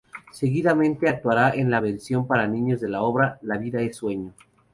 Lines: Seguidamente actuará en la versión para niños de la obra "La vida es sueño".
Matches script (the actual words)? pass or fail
pass